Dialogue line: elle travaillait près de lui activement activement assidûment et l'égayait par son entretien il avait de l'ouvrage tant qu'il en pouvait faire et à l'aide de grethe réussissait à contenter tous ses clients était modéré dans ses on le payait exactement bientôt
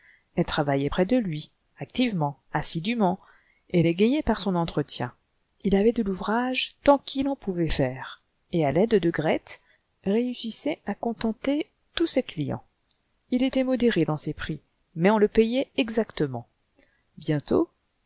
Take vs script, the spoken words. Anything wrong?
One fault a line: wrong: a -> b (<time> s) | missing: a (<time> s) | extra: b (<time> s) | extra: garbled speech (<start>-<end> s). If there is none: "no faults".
missing: activement (2.4 s)
extra: il (13.3 s)
extra: prix mais (14.3 s)